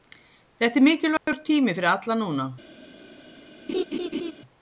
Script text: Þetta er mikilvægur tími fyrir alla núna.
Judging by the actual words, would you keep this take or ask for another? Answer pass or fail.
pass